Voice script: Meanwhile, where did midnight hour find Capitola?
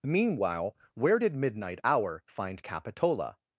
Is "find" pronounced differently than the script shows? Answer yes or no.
no